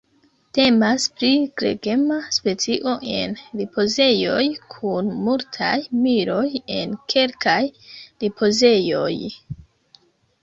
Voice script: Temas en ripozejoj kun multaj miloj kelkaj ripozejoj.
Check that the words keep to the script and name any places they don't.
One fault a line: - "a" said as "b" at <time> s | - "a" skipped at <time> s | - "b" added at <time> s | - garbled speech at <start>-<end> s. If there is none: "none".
- "pri gregema specio" added at 1.2 s
- "en" added at 6.8 s